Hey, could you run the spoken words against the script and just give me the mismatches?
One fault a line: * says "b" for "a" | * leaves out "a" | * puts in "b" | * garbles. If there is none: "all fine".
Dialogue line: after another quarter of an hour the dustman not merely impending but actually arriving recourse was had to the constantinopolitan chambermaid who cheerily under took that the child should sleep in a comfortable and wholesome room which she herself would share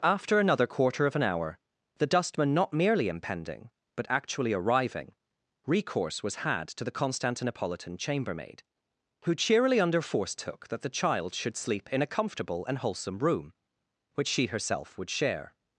* puts in "force"